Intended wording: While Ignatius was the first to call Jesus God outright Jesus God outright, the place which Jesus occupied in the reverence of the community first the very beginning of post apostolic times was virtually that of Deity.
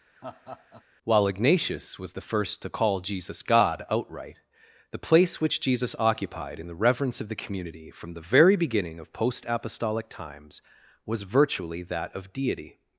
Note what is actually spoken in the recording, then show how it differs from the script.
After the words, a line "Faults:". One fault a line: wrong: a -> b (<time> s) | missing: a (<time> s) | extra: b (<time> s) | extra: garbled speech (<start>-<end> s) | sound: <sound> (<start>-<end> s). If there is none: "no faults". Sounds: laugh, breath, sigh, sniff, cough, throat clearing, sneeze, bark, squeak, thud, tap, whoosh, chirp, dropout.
While Ignatius was the first to call Jesus God outright, the place which Jesus occupied in the reverence of the community from the very beginning of post apostolic times was virtually that of Deity.
Faults:
sound: laugh (0.2-0.8 s)
missing: Jesus God outright (4.4 s)
wrong: first -> from (7.9 s)